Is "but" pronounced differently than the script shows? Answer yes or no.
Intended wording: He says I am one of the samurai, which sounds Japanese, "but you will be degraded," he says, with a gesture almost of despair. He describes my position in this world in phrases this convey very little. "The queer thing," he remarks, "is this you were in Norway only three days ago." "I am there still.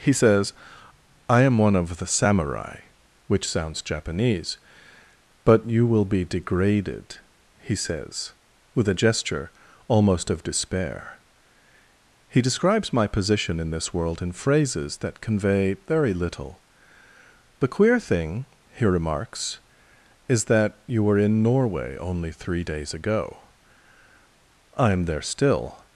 no